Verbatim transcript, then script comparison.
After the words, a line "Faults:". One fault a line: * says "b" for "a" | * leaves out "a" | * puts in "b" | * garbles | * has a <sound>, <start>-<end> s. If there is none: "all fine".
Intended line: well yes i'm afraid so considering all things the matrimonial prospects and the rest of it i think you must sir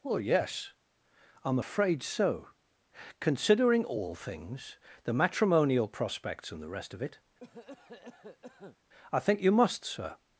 well yes i'm afraid so considering all things the matrimonial prospects and the rest of it i think you must sir
Faults:
* has a cough, 7.4-8.8 s